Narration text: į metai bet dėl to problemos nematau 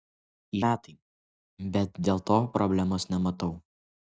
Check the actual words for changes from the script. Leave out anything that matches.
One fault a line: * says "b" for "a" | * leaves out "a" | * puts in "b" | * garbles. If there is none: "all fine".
all fine